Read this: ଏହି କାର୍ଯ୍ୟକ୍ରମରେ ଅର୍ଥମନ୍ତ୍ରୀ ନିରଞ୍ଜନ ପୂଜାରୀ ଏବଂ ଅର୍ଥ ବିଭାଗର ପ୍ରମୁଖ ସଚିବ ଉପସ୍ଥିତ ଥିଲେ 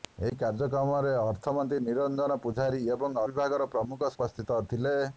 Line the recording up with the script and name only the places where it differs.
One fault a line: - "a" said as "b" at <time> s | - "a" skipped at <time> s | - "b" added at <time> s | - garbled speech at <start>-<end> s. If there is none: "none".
- "ଅର୍ଥ" skipped at 3.2 s
- "ସଚିବ" skipped at 4.1 s